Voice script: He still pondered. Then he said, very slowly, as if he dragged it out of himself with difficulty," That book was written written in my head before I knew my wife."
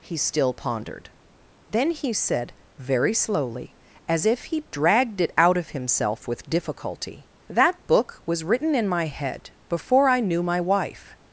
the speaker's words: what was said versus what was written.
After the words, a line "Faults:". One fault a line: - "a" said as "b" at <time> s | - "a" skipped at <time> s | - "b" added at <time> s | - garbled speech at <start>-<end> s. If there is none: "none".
He still pondered. Then he said, very slowly, as if he dragged it out of himself with difficulty," That book was written in my head before I knew my wife."
Faults:
- "written" skipped at 8.7 s